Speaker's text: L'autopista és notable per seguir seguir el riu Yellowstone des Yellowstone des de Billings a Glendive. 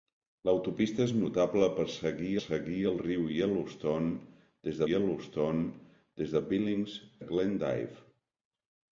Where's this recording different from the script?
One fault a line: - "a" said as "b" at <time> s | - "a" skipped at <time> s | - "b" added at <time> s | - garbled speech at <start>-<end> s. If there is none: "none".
none